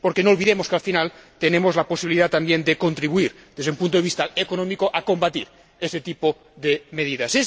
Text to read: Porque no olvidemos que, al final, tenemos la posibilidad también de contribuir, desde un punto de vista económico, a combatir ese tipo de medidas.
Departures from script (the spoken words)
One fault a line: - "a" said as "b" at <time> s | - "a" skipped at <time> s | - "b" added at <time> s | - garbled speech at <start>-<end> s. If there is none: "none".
none